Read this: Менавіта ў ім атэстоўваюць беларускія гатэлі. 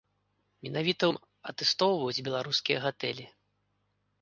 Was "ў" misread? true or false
true